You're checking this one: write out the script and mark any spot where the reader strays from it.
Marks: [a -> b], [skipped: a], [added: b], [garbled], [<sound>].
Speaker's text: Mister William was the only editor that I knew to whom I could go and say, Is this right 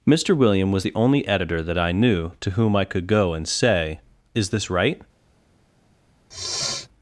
Mister William was the only editor that I knew to whom I could go and say, Is this right [sniff]